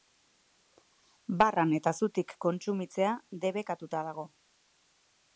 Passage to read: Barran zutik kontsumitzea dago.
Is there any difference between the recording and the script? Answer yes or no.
yes